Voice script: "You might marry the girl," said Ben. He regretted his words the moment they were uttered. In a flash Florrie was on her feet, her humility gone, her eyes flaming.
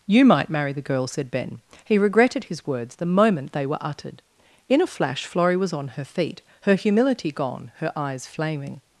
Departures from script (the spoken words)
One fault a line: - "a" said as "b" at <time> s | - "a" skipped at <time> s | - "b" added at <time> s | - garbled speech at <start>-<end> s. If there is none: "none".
none